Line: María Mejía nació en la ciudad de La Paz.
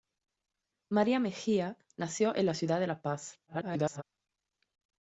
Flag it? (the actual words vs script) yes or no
yes